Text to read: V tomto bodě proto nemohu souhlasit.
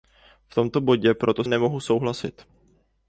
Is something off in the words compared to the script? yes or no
no